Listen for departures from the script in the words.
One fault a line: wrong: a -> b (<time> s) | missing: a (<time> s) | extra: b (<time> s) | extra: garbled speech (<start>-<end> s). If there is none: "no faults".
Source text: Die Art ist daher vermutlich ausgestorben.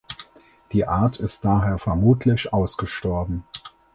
no faults